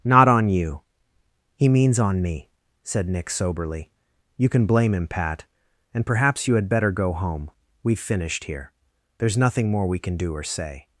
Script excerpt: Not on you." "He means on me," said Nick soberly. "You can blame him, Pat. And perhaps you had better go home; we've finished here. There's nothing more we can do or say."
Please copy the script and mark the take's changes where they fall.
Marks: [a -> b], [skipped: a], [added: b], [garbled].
Not on you." "He means on me," said Nick soberly. "You can blame him, Pat. And perhaps you had better go home; we've finished here. There's nothing more we can do or say."